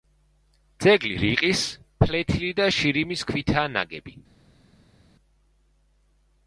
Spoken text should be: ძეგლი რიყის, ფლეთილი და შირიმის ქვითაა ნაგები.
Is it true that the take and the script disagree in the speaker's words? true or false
false